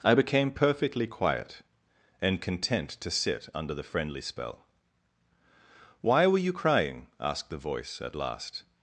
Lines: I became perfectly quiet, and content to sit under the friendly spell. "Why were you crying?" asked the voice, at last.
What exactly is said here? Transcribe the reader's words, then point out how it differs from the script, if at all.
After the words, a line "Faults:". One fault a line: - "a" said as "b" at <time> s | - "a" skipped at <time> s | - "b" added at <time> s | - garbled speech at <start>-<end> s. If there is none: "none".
I became perfectly quiet, and content to sit under the friendly spell. "Why were you crying?" asked the voice, at last.
Faults:
none